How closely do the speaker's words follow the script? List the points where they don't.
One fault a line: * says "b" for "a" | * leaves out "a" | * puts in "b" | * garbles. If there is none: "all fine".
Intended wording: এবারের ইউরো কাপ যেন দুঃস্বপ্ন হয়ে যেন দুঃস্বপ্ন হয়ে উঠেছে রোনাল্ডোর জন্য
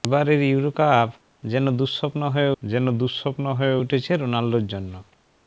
all fine